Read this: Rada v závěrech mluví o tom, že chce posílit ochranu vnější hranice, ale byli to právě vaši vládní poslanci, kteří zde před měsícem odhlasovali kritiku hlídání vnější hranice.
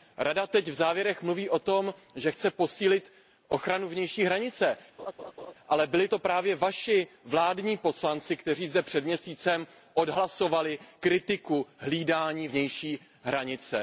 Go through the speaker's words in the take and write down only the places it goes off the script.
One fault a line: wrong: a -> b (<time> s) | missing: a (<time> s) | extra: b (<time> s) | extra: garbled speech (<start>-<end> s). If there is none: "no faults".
extra: teď (0.5 s)